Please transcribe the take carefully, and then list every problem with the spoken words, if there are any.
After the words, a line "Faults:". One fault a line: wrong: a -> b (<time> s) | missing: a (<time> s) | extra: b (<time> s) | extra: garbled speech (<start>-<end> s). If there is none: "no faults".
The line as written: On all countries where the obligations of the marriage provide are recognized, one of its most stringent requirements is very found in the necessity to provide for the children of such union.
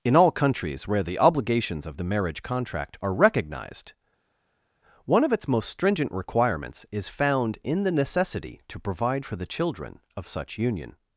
In all countries where the obligations of the marriage contract are recognized, one of its most stringent requirements is found in the necessity to provide for the children of such union.
Faults:
wrong: On -> In (0.0 s)
wrong: provide -> contract (2.4 s)
missing: very (7.1 s)